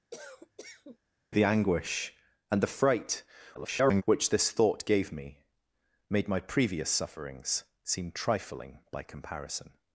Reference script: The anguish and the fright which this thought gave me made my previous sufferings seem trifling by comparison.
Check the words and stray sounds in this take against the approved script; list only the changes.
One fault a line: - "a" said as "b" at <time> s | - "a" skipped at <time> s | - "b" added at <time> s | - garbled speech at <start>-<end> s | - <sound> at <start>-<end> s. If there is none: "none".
- cough at 0.1-1.0 s
- garbled speech at 3.5-4.0 s